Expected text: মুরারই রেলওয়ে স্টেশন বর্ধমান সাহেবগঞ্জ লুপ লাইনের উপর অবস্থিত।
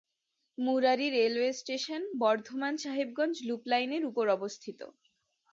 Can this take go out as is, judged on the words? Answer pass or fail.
pass